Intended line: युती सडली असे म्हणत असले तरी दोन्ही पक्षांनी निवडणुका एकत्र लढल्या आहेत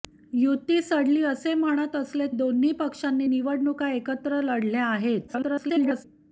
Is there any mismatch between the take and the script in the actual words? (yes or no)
yes